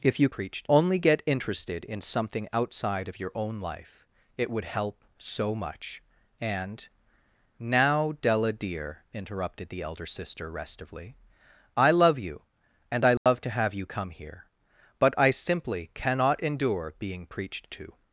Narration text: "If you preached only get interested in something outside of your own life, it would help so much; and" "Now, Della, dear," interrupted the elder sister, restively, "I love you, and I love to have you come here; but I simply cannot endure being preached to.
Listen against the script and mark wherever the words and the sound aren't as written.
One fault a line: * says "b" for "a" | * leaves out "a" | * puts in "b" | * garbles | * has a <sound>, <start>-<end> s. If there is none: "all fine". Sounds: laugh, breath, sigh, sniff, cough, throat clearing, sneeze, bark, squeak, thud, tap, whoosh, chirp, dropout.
* has a dropout, 13.2-13.3 s